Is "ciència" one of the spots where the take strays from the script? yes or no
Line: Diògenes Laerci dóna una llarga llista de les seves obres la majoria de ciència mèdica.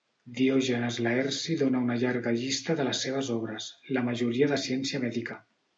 no